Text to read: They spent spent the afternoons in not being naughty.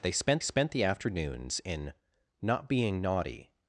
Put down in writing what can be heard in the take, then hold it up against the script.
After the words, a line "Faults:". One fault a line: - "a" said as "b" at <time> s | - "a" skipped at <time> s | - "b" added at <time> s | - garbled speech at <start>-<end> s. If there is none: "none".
They spent spent the afternoons in not being naughty.
Faults:
none